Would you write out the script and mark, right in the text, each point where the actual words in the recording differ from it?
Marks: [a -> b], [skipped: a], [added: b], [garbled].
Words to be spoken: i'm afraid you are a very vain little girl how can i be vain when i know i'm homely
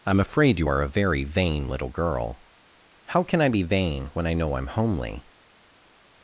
i'm afraid you are a very vain little girl how can i be vain when i know i'm homely